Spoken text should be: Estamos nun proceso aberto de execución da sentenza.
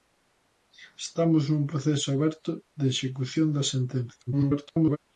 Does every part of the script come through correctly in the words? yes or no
no